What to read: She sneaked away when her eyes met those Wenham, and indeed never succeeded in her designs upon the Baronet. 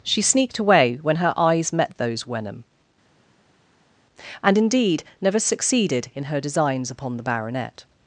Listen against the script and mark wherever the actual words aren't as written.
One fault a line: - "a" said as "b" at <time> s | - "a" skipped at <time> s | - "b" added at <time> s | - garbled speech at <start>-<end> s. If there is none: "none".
none